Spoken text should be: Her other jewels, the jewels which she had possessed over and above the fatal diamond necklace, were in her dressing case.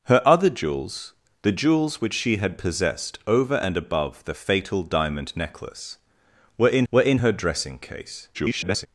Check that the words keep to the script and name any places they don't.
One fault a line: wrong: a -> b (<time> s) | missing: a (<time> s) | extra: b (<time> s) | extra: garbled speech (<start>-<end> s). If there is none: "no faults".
extra: were in (6.9 s)
extra: garbled speech (8.3-8.9 s)